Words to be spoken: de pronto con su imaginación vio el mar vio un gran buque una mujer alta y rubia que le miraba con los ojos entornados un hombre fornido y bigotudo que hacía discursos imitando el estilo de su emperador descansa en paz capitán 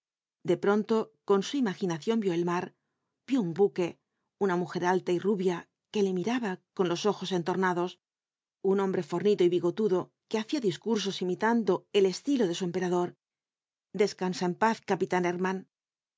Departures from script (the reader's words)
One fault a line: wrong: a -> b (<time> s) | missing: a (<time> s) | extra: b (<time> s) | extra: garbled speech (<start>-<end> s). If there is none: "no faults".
missing: gran (3.5 s)